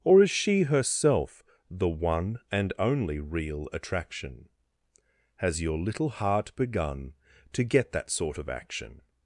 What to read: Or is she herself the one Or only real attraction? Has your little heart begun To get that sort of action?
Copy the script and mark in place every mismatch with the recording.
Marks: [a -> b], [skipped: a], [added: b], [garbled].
Or is she herself the one [Or -> And] only real attraction? Has your little heart begun To get that sort of action?